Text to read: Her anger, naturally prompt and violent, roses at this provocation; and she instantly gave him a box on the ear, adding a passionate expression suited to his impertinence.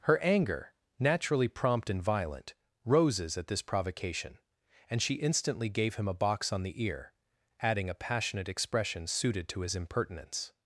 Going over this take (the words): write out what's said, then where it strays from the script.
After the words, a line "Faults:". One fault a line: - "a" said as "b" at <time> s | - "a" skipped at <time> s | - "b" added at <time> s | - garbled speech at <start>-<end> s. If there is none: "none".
Her anger, naturally prompt and violent, roses at this provocation; and she instantly gave him a box on the ear, adding a passionate expression suited to his impertinence.
Faults:
none